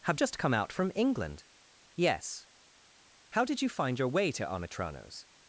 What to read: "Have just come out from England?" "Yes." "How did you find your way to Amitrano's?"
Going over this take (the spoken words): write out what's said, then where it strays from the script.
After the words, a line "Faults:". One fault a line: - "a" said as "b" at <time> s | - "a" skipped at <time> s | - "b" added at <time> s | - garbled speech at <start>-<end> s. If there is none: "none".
"Have just come out from England?" "Yes." "How did you find your way to Amitrano's?"
Faults:
none